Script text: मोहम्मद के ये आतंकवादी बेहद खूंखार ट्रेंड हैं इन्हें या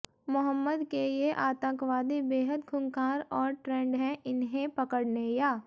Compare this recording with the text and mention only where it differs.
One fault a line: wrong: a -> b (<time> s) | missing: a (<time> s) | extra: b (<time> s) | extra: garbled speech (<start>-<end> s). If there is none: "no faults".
extra: और (3.3 s)
extra: पकड़ने (4.7 s)